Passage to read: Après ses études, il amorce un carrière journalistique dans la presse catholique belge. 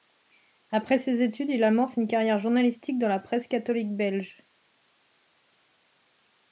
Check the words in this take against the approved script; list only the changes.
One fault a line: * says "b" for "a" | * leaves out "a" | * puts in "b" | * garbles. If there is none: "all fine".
* says "une" for "un"